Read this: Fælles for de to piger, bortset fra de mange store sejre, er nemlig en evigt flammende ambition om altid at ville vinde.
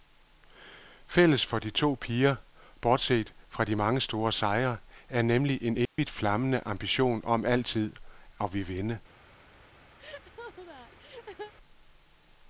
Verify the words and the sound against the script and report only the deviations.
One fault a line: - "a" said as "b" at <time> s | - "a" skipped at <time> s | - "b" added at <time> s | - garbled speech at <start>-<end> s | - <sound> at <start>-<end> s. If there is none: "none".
- dropout at 5.8-6.0 s
- laugh at 10.0-11.5 s